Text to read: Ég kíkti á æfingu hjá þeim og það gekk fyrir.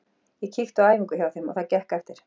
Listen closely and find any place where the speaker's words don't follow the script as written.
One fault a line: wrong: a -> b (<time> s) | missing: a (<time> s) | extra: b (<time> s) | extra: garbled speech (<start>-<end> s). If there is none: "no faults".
wrong: fyrir -> eftir (2.0 s)